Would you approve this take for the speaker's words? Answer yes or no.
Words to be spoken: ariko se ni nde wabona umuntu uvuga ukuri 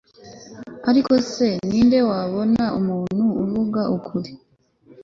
yes